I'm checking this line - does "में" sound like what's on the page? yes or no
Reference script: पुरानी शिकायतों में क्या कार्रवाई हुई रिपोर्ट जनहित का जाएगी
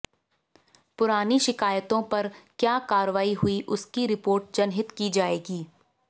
no